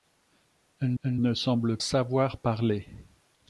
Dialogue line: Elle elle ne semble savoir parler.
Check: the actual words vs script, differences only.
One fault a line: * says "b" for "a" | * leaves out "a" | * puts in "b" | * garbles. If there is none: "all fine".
all fine